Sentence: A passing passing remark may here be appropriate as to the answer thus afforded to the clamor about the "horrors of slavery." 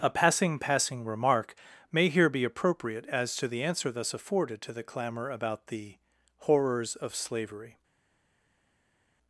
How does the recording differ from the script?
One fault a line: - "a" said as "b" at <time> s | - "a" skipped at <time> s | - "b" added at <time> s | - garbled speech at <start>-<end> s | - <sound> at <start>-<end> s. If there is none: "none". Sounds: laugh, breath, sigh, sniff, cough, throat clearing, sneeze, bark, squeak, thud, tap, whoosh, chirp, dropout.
none